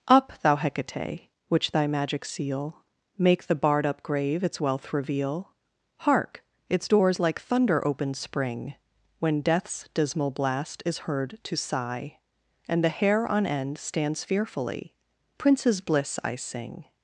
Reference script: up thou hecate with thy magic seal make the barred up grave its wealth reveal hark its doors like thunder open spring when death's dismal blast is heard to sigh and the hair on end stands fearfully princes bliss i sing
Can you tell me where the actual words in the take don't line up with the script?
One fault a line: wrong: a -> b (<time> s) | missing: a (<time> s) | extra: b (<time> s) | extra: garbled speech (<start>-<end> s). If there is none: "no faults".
wrong: with -> which (1.5 s)